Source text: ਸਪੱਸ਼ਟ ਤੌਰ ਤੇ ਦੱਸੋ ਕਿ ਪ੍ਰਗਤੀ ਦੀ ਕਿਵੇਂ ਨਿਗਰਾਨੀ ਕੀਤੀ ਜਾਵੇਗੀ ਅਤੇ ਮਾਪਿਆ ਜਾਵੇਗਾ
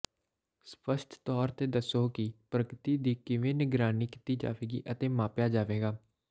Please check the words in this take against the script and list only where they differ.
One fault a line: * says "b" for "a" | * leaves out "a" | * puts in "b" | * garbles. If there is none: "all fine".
all fine